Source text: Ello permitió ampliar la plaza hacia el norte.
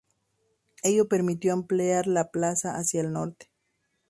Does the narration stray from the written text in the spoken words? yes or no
no